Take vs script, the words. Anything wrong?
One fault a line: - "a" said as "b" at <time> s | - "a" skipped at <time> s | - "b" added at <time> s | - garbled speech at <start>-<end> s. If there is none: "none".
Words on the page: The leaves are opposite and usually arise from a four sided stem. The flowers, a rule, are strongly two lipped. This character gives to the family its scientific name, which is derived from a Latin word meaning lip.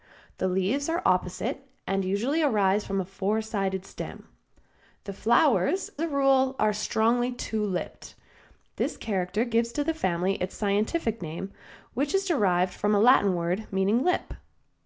none